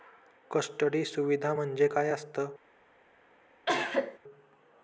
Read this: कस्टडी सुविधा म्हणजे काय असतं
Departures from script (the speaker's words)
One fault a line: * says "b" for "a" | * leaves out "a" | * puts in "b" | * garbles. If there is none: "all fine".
all fine